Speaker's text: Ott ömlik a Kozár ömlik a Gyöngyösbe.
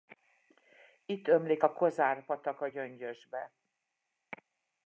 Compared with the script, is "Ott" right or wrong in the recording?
wrong